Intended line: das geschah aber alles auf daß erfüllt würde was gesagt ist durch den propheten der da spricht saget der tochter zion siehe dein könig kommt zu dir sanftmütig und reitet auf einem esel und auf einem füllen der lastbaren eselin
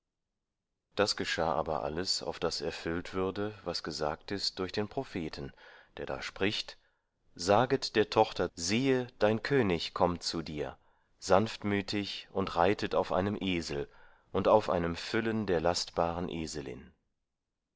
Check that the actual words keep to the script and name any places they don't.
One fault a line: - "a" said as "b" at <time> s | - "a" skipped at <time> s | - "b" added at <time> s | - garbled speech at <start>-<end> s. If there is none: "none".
- "zion" skipped at 8.5 s